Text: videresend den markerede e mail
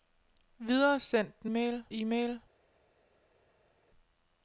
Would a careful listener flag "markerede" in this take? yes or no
yes